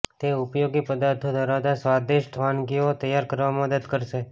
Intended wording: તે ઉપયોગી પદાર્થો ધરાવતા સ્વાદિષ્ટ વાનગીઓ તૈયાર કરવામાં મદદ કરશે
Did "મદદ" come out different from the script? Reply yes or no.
no